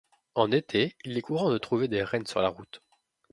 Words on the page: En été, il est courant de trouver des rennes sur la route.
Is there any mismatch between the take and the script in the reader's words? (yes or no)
no